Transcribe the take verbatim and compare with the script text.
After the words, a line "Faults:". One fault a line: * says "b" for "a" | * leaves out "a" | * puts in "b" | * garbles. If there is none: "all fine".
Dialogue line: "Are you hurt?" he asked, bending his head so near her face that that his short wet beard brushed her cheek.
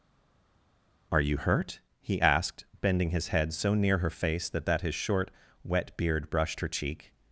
"Are you hurt?" he asked, bending his head so near her face that that his short wet beard brushed her cheek.
Faults:
all fine